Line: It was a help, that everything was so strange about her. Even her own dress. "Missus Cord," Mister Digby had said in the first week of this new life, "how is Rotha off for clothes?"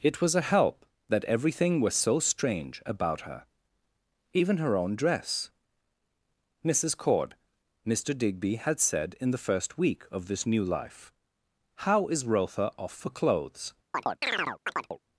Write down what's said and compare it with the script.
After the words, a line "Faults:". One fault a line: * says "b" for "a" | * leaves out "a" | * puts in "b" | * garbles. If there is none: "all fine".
It was a help, that everything was so strange about her. Even her own dress. "Missus Cord," Mister Digby had said in the first week of this new life, "how is Rotha off for clothes?"
Faults:
all fine